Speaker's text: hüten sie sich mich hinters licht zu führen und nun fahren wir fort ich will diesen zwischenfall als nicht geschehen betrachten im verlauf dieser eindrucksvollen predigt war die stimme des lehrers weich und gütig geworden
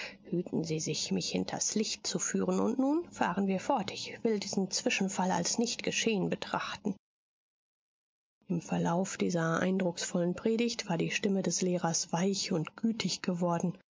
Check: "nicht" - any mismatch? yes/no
no